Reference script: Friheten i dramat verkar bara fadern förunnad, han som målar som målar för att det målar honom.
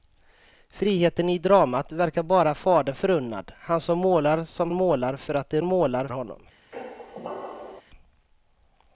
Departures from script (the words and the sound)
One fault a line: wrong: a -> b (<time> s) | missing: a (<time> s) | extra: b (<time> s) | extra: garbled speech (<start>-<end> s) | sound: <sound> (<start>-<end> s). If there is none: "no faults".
sound: squeak (6.7-7.8 s)